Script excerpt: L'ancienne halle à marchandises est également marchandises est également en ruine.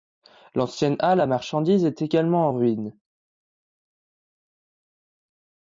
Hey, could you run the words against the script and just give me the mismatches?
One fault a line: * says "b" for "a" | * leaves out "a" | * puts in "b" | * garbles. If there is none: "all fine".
* leaves out "marchandises est également"